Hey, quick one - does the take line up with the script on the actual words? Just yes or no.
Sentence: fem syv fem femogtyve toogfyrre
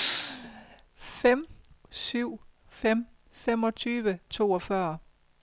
yes